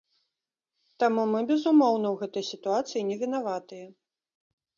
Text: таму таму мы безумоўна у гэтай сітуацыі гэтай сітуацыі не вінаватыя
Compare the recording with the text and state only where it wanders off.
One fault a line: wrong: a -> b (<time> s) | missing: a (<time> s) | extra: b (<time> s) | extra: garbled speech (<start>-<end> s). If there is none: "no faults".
missing: таму (1.2 s)
missing: гэтай сітуацыі (3.0 s)